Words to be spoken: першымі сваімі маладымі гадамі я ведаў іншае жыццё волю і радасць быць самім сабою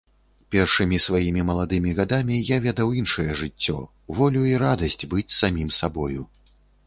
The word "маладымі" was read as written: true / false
true